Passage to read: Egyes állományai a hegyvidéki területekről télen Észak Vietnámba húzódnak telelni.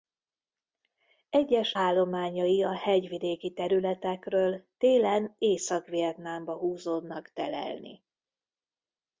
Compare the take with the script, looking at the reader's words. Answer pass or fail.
pass